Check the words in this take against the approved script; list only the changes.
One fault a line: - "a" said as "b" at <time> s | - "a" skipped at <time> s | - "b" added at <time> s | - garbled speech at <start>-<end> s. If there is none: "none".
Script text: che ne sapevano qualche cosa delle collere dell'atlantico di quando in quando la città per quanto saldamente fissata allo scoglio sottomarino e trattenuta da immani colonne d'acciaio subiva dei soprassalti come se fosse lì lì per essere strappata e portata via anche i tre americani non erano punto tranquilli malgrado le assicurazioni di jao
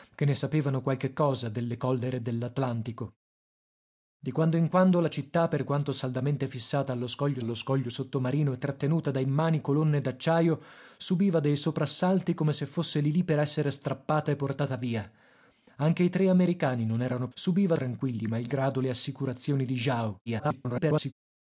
- "allo scoglio" added at 7.4 s
- "punto" said as "subiva" at 17.3 s
- garbled speech at 20.3-21.1 s